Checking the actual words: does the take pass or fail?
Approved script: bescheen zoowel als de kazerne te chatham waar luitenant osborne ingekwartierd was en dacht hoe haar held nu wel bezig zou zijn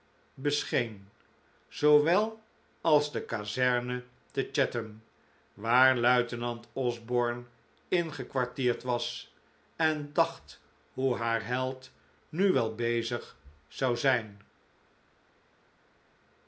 pass